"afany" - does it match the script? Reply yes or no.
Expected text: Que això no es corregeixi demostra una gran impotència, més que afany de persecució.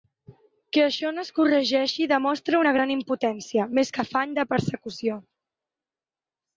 yes